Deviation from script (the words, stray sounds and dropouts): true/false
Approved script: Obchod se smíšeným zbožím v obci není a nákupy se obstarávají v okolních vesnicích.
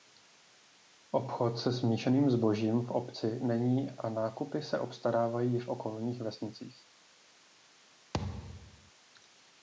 true